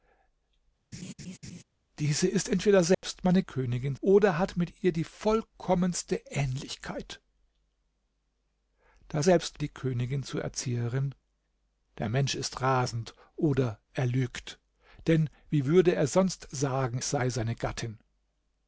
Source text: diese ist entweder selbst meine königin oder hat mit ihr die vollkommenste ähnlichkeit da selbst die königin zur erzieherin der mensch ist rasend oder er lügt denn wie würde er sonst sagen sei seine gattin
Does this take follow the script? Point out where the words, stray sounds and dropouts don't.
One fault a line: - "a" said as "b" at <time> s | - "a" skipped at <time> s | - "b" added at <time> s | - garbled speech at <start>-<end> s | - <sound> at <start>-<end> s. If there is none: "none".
- laugh at 0.9-1.6 s
- dropout at 2.9-3.0 s